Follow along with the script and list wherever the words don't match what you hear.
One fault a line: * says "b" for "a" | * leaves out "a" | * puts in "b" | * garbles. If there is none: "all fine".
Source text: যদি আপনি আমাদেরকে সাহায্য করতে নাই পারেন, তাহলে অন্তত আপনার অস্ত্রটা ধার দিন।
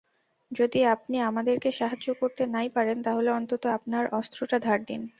all fine